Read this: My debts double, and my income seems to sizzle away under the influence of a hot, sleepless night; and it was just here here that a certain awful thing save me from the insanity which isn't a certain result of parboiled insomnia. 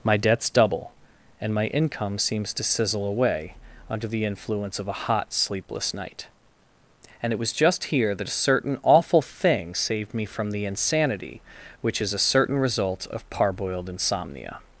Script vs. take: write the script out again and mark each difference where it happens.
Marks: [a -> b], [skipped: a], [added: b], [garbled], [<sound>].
My debts double, and my income seems to sizzle away under the influence of a hot, sleepless night; and it was just here [skipped: here] that a certain awful thing [save -> saved] me from the insanity which [isn't -> is] a certain result of parboiled insomnia.